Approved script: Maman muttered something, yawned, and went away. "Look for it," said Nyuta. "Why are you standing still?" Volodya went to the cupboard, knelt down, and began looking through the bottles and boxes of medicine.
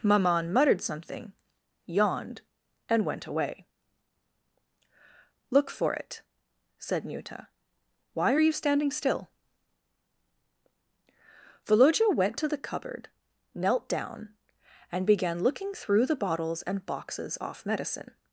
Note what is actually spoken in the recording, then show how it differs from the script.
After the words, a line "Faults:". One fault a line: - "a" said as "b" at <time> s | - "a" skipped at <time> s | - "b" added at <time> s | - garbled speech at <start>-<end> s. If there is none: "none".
Maman muttered something, yawned, and went away. "Look for it," said Nyuta. "Why are you standing still?" Volodya went to the cupboard, knelt down, and began looking through the bottles and boxes off medicine.
Faults:
- "of" said as "off" at 17.4 s